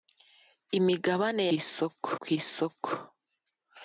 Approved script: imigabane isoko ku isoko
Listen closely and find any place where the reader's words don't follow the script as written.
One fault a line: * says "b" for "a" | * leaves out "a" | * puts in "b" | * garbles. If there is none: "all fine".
all fine